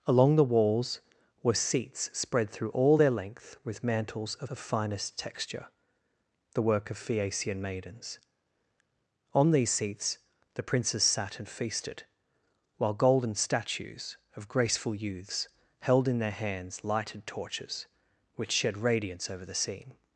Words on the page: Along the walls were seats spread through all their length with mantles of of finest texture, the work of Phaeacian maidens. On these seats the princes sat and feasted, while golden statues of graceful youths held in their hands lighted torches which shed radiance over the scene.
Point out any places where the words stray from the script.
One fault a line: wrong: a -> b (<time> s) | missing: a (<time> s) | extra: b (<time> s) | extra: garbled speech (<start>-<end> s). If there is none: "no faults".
no faults